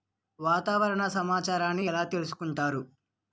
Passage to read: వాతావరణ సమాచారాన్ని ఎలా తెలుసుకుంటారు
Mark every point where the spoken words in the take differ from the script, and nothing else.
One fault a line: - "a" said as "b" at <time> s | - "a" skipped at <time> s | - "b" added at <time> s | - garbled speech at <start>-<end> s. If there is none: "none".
none